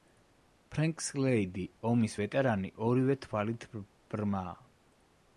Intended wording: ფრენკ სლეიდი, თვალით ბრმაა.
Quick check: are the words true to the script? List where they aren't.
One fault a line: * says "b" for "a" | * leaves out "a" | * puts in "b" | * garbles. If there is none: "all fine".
* puts in "ომის ვეტერანი ორივე"